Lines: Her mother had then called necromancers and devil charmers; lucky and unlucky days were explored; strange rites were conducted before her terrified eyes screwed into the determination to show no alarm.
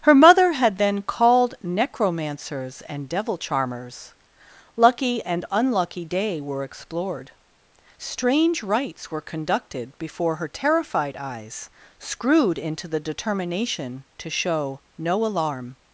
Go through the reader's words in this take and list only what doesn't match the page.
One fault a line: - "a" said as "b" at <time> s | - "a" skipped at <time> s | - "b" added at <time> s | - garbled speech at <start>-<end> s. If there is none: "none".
- "days" said as "day" at 6.0 s